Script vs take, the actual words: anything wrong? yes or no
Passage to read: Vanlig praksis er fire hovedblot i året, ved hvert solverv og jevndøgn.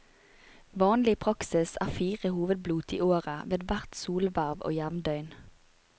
no